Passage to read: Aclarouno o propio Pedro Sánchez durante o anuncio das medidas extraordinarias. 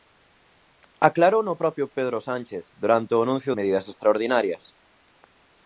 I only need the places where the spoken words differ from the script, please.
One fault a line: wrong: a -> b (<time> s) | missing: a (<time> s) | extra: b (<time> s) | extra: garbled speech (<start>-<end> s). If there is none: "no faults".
missing: das (3.5 s)